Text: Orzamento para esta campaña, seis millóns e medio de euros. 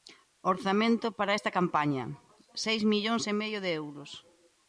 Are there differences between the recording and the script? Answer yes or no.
no